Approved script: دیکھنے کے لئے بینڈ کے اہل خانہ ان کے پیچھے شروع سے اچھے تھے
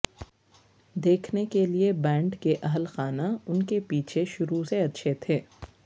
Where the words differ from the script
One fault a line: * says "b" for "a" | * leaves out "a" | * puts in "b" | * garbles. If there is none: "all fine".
all fine